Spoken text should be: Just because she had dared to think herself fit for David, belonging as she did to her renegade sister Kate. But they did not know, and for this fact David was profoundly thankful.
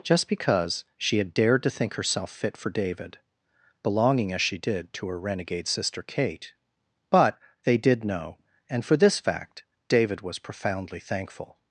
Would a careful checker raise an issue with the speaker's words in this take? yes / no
yes